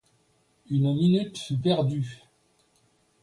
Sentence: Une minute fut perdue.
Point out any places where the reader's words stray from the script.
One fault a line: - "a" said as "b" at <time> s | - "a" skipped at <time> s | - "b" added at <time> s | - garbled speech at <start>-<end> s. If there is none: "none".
none